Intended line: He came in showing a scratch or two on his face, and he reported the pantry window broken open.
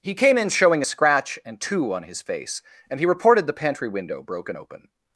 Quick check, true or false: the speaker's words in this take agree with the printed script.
false